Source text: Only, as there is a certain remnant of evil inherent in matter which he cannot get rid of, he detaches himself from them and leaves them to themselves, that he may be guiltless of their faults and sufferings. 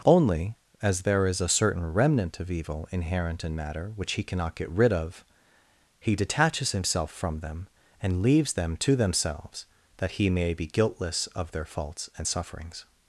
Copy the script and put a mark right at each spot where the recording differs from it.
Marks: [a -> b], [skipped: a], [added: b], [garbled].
Only, as there is a certain remnant of evil inherent in matter which he cannot get rid of, he detaches himself from them and leaves them to themselves, that he may be guiltless of their faults and sufferings.